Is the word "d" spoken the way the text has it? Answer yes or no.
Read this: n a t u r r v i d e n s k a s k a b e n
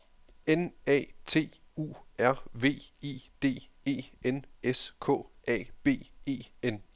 yes